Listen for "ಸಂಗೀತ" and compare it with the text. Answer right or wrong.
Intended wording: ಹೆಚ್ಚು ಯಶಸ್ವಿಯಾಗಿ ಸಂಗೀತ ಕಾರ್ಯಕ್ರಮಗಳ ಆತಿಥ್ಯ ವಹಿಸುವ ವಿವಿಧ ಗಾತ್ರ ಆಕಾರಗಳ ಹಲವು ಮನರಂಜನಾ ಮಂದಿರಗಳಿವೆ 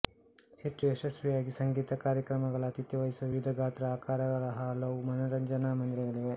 right